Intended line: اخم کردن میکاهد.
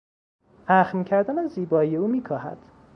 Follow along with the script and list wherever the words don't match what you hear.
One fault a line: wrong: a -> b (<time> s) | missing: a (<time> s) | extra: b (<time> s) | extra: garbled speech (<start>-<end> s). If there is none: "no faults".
extra: از زیبایی او (1.4 s)